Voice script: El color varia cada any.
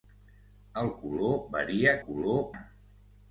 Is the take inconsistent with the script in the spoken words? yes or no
yes